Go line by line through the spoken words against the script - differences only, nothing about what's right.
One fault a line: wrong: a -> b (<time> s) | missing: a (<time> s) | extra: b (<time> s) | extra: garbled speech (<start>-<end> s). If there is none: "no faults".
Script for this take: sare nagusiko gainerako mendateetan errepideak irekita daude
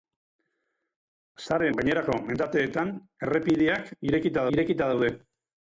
missing: nagusiko (1.7 s)
extra: irekita (4.6 s)